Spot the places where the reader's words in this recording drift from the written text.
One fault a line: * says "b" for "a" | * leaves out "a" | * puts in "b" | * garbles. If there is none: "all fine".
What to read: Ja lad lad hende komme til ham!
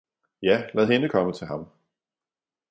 * leaves out "lad"